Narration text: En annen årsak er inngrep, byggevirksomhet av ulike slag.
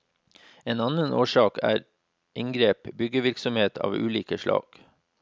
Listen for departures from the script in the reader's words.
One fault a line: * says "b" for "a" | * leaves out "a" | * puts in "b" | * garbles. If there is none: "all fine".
all fine